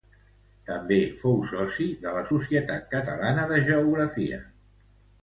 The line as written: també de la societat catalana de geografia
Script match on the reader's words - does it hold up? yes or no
no